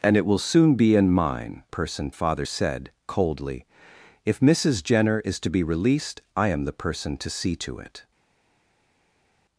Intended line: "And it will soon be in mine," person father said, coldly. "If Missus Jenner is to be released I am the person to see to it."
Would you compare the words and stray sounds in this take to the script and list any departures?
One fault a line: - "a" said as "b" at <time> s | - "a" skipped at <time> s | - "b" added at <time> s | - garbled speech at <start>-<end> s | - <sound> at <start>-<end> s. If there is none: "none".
none